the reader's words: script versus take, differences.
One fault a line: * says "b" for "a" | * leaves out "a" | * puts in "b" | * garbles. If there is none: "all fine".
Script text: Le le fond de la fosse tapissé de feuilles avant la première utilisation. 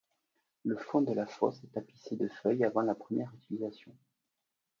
* leaves out "le"
* puts in "est"